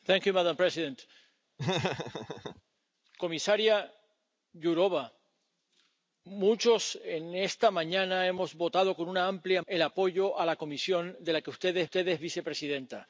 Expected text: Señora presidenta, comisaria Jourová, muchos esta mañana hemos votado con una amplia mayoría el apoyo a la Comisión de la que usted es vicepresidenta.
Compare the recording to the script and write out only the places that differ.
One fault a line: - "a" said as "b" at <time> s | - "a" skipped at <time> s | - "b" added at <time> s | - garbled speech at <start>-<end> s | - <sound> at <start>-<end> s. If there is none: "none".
- laugh at 1.6-2.6 s
- "mayoría" skipped at 9.6 s
- "usted es" added at 11.9 s